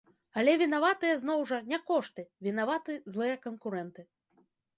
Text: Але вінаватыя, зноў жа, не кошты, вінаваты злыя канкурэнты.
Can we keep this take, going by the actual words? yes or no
yes